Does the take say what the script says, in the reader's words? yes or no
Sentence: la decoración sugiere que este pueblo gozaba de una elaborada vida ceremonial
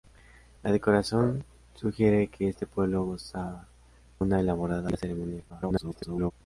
no